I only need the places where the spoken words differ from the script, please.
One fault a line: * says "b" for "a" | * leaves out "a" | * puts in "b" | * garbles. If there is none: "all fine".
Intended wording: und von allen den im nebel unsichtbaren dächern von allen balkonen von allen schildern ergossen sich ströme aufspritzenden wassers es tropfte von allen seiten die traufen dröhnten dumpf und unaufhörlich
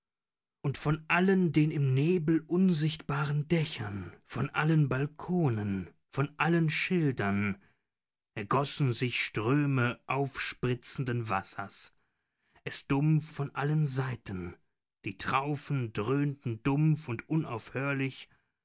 * says "dumpf" for "tropfte"